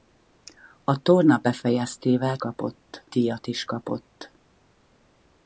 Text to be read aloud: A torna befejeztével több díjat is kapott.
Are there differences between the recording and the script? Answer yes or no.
yes